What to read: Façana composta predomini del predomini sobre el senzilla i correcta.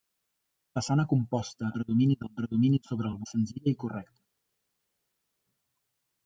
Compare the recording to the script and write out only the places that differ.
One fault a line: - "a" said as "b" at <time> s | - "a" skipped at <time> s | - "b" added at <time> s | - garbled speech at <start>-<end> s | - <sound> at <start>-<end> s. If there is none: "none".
none